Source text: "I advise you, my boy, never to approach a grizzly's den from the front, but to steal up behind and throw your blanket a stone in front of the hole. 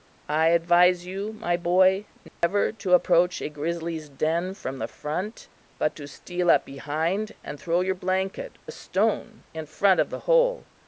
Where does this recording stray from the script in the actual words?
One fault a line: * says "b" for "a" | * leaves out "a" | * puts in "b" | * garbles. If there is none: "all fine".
all fine